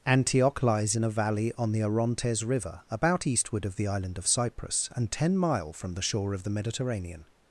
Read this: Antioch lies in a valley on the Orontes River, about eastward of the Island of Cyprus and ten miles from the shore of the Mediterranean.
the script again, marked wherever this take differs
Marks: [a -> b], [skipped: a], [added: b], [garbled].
Antioch lies in a valley on the Orontes River, about eastward of the Island of Cyprus and ten [miles -> mile] from the shore of the Mediterranean.